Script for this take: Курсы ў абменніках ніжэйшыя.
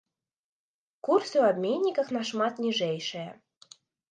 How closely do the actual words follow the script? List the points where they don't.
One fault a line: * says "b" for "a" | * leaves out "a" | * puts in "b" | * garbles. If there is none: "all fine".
* puts in "нашмат"